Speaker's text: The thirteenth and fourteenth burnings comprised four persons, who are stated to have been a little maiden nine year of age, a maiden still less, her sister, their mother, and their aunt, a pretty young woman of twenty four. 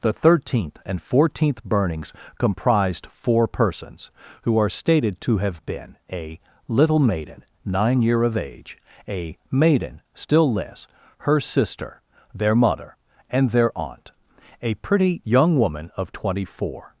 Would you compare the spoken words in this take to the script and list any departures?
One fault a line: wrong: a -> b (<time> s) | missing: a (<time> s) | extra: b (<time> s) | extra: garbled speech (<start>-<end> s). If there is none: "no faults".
no faults